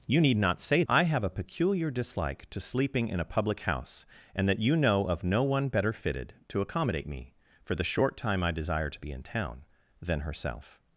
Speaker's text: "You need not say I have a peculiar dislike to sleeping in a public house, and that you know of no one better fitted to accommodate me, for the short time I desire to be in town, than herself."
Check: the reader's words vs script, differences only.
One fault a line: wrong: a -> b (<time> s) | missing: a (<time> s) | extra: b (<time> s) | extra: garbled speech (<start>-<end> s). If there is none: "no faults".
no faults